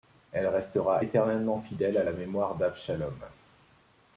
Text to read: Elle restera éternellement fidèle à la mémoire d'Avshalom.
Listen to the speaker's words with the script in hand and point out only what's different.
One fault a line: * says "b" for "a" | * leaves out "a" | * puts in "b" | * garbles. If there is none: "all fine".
all fine